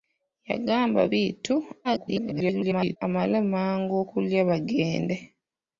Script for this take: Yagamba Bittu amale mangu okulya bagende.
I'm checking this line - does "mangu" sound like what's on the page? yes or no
yes